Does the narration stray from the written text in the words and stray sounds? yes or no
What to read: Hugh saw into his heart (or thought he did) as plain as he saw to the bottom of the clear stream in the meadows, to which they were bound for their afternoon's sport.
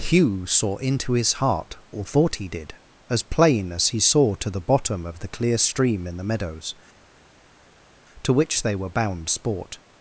yes